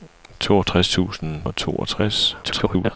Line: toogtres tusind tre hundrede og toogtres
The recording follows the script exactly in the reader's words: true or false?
false